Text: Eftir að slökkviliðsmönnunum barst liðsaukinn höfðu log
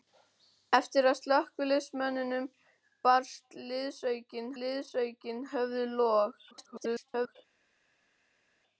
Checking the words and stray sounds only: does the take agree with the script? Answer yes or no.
no